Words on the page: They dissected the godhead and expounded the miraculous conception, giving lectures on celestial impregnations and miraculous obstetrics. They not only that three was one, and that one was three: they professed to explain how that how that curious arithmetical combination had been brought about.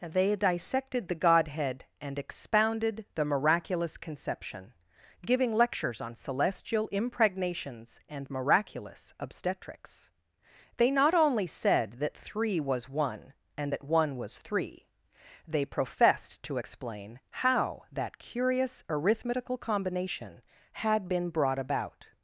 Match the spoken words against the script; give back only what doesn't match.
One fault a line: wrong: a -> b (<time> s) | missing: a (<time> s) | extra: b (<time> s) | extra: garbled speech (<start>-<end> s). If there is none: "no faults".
extra: said (11.5 s)
missing: how that (18.2 s)